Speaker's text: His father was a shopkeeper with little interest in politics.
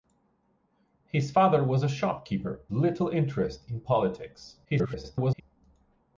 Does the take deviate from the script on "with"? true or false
true